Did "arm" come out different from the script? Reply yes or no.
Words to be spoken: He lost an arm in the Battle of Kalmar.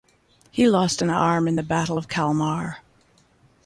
no